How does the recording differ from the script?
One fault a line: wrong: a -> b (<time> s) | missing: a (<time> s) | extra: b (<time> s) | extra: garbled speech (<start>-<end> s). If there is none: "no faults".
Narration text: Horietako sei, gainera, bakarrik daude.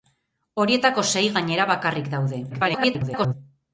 extra: garbled speech (2.5-3.3 s)